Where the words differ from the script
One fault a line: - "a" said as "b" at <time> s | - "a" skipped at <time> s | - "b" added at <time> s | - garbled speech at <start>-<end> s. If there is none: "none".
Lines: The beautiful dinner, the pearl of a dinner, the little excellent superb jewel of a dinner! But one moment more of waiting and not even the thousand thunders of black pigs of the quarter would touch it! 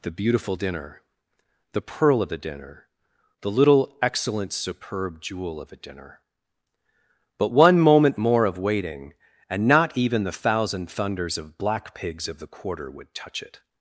- "a" said as "the" at 2.3 s